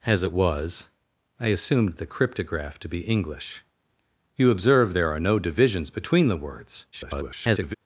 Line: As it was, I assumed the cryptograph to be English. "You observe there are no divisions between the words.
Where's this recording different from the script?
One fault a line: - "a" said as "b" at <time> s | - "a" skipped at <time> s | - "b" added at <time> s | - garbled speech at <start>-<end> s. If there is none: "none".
- garbled speech at 6.9-7.7 s